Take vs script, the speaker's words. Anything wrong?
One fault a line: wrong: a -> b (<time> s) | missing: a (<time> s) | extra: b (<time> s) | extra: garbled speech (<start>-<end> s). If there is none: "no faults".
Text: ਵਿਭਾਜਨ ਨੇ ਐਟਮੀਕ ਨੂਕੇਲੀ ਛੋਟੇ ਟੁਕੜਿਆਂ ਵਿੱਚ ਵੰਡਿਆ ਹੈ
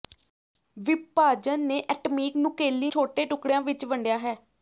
no faults